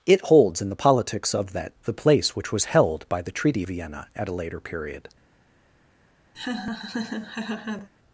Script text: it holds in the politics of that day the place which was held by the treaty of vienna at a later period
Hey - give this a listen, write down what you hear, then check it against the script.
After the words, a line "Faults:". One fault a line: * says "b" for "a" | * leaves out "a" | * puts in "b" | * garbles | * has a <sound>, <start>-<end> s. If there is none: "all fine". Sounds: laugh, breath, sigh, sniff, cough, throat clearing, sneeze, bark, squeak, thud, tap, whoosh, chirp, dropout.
it holds in the politics of that the place which was held by the treaty vienna at a later period
Faults:
* leaves out "day"
* leaves out "of"
* has a laugh, 6.3-7.9 s